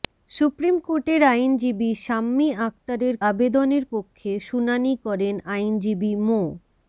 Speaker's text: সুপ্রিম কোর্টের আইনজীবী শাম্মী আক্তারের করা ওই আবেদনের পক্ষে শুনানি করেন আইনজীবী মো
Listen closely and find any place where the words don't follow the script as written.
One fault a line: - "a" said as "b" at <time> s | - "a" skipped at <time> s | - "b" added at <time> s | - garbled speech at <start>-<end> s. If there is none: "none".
- "করা ওই" skipped at 3.1 s